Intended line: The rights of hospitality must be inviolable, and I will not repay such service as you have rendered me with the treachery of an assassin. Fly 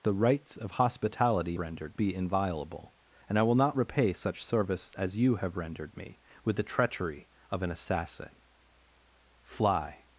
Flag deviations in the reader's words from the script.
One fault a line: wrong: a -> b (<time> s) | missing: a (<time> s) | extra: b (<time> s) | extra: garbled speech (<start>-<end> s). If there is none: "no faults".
wrong: must -> rendered (1.6 s)